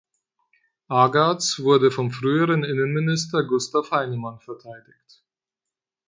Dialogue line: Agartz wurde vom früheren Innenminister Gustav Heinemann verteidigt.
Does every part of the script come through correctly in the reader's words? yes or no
yes